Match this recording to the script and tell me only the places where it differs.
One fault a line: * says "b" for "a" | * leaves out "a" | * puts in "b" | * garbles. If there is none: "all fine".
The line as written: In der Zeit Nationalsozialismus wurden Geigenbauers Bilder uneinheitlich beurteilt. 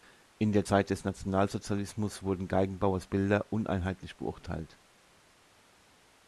* puts in "des"